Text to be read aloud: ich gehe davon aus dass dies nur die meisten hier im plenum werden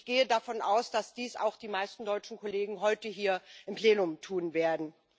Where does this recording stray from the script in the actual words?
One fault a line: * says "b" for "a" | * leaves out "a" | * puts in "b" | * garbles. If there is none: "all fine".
* says "auch" for "nur"
* puts in "deutschen kollegen heute"
* puts in "tun"